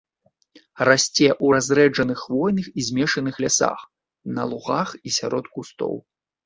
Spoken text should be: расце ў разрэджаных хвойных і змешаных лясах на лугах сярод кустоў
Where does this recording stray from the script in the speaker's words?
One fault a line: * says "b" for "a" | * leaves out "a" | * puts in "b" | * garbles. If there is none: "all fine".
* puts in "і"